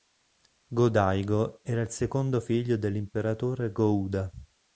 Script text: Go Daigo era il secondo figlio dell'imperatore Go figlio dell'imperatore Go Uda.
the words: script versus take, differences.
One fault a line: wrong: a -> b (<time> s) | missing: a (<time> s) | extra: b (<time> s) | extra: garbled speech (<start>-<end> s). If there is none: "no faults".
missing: figlio dell'imperatore Go (4.0 s)